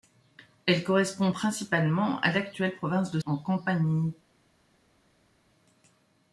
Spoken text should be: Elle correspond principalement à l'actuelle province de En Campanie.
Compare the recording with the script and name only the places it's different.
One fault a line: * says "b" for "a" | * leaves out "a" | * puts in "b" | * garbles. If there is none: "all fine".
all fine